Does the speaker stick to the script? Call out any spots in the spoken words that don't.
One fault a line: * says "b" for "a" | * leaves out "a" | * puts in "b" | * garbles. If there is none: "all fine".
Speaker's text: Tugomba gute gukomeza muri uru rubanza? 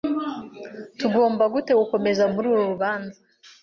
all fine